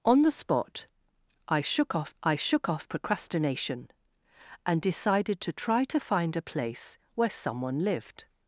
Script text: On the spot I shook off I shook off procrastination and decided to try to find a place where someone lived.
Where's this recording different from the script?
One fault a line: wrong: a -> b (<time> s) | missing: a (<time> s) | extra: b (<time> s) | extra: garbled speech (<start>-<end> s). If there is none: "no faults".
no faults